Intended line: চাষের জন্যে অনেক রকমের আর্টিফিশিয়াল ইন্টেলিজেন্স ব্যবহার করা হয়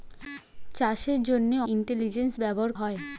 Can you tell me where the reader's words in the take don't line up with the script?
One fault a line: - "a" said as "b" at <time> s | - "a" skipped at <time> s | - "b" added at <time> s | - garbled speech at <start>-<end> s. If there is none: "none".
- "অনেক রকমের আর্টিফিশিয়াল" skipped at 1.6 s
- "করা" skipped at 2.7 s